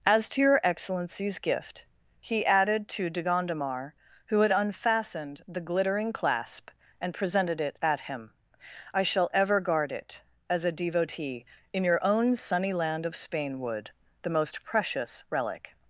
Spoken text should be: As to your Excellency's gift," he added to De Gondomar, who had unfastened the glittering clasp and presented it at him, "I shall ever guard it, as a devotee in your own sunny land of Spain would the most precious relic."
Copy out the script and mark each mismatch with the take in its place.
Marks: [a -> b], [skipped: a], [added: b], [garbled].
As to your Excellency's gift," he added to De Gondomar, who had unfastened the glittering clasp and presented it at him, "I shall ever guard it, as a devotee in your own sunny land of Spain would the most precious relic."